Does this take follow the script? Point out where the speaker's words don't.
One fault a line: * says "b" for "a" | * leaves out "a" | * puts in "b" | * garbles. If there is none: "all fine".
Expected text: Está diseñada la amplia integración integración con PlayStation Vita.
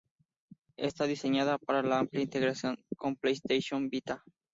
* puts in "para"
* leaves out "integración"